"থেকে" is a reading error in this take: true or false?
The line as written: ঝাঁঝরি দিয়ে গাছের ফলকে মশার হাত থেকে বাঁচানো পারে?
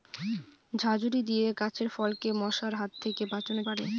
false